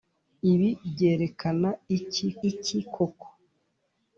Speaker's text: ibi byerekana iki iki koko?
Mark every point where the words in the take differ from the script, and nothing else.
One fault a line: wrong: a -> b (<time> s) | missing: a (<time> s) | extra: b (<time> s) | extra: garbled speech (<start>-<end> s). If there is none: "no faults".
no faults